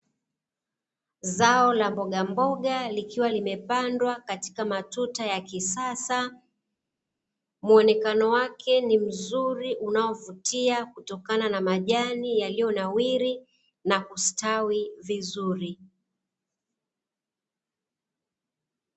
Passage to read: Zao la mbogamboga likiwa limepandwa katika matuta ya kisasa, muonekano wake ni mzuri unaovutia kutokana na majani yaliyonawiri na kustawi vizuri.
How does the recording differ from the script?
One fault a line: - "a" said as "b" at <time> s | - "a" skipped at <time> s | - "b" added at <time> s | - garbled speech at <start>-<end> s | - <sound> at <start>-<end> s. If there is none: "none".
none